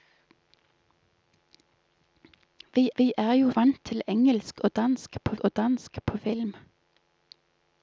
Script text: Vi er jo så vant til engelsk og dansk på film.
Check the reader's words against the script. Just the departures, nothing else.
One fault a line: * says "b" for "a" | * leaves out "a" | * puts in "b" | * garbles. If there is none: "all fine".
* puts in "vi"
* leaves out "så"
* puts in "og dansk på"